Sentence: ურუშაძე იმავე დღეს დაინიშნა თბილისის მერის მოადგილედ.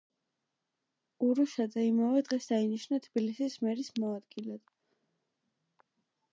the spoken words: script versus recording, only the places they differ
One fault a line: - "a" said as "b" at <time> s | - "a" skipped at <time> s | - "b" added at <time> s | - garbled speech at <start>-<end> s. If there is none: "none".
none